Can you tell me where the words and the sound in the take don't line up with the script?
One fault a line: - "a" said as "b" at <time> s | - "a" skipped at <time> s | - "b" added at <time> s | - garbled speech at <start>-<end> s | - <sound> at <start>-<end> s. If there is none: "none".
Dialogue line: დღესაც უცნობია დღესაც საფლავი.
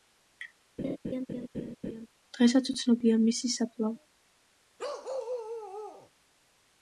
- laugh at 0.8-2.1 s
- "დღესაც" said as "მისი" at 3.2 s
- bark at 4.8-6.1 s